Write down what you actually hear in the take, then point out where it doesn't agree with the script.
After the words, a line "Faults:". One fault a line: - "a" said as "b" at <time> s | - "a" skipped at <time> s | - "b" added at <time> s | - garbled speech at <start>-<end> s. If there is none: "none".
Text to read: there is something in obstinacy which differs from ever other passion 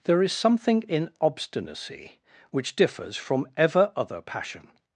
there is something in obstinacy which differs from ever other passion
Faults:
none